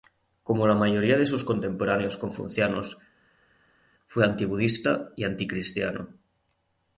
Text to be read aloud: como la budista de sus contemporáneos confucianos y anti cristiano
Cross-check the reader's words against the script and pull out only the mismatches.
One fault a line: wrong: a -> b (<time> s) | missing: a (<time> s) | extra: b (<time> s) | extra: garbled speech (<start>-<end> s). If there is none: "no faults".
wrong: budista -> mayoría (0.7 s)
extra: fue anti budista (4.1 s)